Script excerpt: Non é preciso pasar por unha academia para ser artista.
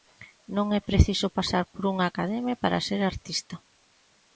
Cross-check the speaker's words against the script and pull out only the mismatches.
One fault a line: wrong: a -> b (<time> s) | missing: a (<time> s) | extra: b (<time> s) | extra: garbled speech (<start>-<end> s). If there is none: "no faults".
no faults